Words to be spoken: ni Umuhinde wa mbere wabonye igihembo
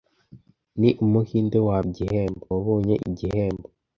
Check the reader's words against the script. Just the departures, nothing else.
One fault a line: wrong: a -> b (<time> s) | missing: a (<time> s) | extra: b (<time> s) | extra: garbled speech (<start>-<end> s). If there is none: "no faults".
wrong: mbere -> igihembo (1.9 s)